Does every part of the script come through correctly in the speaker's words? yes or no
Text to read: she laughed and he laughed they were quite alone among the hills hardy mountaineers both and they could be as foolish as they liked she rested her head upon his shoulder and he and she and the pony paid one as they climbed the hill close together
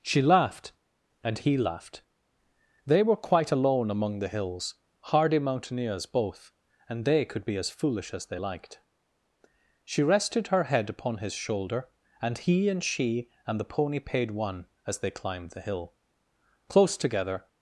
yes